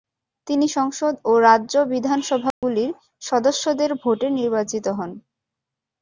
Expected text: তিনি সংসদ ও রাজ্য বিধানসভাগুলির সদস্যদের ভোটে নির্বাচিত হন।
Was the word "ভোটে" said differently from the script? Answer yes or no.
no